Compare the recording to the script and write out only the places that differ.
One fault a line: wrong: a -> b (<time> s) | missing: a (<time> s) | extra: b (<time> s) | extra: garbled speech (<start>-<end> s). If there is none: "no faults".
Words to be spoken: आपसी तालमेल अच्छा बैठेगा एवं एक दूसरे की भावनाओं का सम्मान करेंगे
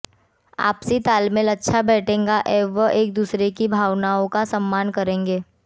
no faults